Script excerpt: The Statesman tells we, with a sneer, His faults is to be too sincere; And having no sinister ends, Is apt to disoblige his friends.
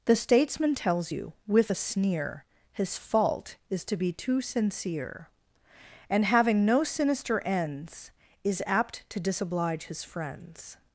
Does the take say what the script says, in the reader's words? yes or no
no